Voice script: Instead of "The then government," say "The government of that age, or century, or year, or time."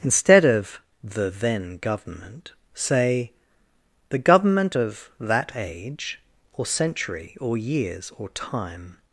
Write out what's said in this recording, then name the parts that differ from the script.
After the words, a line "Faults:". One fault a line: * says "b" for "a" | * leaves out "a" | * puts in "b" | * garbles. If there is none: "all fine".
Instead of "The then government," say "The government of that age, or century, or years, or time."
Faults:
* says "years" for "year"